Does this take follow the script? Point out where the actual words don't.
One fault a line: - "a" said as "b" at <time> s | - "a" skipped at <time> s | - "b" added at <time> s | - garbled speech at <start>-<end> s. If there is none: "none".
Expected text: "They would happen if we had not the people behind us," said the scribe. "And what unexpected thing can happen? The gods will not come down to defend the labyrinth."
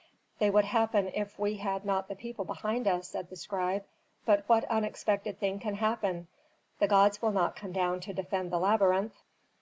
- "And" said as "But" at 4.2 s